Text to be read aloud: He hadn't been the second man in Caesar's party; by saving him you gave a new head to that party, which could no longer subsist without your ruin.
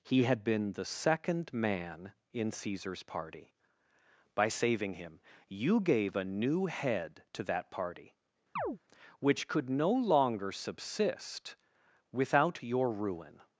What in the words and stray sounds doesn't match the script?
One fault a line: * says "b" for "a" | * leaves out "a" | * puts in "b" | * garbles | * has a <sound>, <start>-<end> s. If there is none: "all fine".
* says "had" for "hadn't"
* has a chirp, 8.6-8.8 s